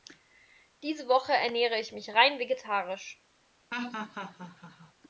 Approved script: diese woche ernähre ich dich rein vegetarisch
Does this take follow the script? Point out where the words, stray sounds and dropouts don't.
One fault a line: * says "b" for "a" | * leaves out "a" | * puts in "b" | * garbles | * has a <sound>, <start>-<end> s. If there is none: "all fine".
* says "mich" for "dich"
* has a laugh, 3.7-4.9 s